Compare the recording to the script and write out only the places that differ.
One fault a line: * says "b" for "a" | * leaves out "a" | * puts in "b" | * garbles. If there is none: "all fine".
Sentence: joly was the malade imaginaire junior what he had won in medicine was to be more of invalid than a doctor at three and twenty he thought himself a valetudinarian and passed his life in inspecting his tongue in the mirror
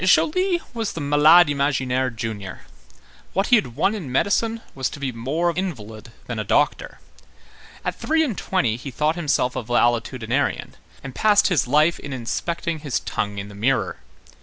all fine